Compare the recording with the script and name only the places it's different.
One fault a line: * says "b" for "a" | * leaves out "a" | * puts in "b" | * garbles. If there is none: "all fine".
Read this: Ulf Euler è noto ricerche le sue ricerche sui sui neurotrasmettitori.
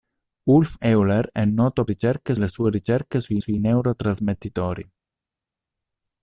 all fine